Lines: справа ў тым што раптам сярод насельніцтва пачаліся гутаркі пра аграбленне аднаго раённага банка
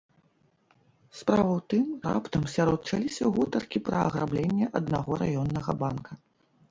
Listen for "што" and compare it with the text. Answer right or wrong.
wrong